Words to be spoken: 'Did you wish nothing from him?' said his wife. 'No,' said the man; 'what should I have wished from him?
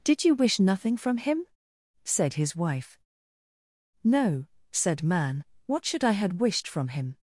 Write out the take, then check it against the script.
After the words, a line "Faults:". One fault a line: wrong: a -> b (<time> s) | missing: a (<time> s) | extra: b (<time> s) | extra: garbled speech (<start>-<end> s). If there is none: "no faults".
'Did you wish nothing from him?' said his wife. 'No,' said man; 'what should I had wished from him?
Faults:
missing: the (5.0 s)
wrong: have -> had (6.1 s)